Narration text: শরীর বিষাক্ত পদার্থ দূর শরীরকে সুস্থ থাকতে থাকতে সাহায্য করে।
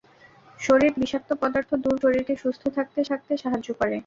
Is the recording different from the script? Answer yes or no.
no